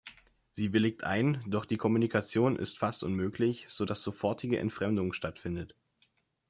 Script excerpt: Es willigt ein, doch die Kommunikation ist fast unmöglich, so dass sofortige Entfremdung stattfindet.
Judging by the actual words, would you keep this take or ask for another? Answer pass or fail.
fail